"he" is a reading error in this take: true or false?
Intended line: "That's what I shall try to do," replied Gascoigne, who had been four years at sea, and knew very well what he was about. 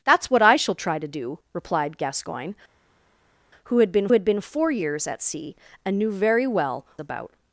true